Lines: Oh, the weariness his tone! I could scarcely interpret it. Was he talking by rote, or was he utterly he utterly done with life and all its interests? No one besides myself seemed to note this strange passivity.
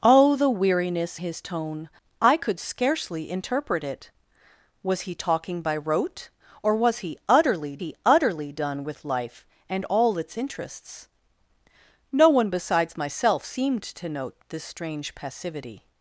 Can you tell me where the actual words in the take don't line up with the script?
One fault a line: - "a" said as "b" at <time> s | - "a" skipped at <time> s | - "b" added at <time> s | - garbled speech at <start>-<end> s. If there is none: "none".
none